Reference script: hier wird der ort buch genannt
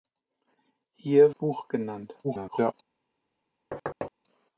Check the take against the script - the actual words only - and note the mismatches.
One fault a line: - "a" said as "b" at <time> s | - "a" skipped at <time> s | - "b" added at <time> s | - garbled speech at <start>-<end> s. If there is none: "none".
- "wird der ort" skipped at 1.4 s
- garbled speech at 2.2-2.7 s